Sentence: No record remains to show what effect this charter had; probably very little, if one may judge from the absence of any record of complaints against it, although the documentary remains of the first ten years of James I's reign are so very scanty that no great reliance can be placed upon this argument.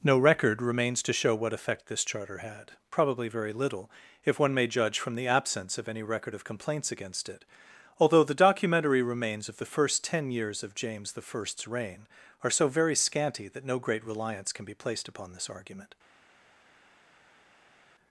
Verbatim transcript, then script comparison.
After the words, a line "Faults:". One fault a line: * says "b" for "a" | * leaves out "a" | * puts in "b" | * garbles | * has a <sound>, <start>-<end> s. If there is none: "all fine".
No record remains to show what effect this charter had; probably very little, if one may judge from the absence of any record of complaints against it, although the documentary remains of the first ten years of James I's reign are so very scanty that no great reliance can be placed upon this argument.
Faults:
all fine